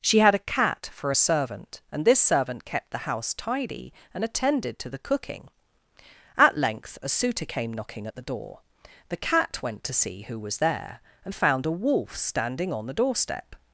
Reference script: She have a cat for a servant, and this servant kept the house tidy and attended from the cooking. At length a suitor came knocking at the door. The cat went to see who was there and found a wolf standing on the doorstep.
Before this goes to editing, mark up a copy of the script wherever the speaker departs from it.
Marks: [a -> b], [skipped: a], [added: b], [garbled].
She [have -> had] a cat for a servant, and this servant kept the house tidy and attended [from -> to] the cooking. At length a suitor came knocking at the door. The cat went to see who was there and found a wolf standing on the doorstep.